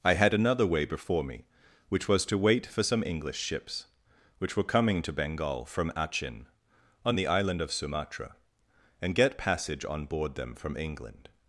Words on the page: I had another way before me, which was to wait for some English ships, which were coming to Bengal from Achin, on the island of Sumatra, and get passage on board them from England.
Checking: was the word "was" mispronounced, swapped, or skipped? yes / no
no